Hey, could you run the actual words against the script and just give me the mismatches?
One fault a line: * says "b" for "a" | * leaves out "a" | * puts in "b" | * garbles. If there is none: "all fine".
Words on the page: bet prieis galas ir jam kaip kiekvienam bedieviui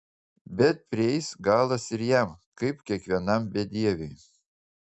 all fine